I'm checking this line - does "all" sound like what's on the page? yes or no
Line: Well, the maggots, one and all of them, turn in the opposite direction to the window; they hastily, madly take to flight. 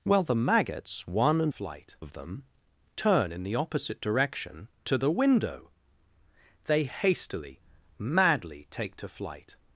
no